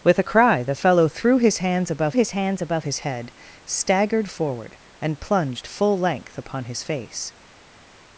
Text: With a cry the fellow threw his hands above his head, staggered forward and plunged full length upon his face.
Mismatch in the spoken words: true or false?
true